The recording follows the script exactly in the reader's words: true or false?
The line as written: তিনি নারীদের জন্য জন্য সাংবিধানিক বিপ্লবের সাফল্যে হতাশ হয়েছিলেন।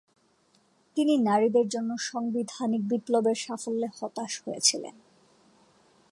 false